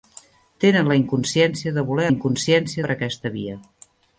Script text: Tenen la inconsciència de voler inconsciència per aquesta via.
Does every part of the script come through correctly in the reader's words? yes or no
yes